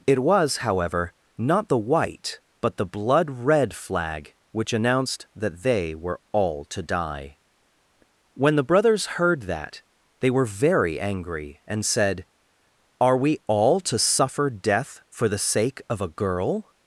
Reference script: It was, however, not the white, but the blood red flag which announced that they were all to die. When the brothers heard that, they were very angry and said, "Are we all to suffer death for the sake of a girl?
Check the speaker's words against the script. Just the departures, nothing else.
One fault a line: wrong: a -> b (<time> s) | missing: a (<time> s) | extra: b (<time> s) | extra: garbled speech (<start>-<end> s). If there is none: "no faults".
no faults